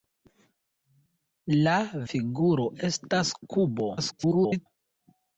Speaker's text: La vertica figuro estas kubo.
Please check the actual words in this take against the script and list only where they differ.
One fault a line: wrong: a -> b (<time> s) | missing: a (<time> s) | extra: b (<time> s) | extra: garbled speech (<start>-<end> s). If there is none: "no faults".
missing: vertica (1.8 s)
extra: garbled speech (4.0-4.7 s)